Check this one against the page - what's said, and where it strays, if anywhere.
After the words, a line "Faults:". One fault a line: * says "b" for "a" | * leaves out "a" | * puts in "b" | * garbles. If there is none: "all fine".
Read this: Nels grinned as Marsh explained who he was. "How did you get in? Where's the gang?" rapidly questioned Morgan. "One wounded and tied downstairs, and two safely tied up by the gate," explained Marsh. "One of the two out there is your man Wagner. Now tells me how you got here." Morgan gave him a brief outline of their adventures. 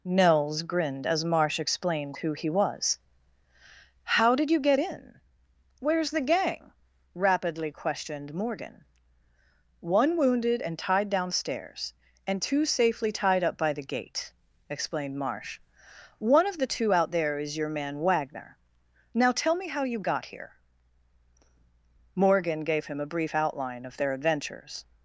Nels grinned as Marsh explained who he was. "How did you get in? Where's the gang?" rapidly questioned Morgan. "One wounded and tied downstairs, and two safely tied up by the gate," explained Marsh. "One of the two out there is your man Wagner. Now tell me how you got here." Morgan gave him a brief outline of their adventures.
Faults:
* says "tell" for "tells"